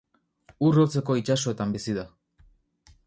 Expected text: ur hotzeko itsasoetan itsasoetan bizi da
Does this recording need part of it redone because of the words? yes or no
yes